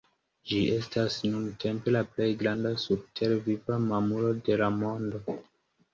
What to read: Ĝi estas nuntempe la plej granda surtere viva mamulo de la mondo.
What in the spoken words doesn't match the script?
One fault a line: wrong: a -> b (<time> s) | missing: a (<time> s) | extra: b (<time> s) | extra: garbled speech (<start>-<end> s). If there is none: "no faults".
no faults